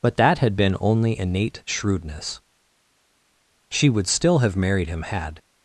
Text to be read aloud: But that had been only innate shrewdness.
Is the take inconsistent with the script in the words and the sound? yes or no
yes